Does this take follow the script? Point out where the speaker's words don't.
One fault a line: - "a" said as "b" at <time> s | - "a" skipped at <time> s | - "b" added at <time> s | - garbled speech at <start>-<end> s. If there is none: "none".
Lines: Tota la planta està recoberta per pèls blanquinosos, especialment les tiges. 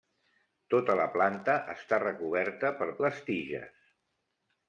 - "pèls blanquinosos especialment" skipped at 2.9 s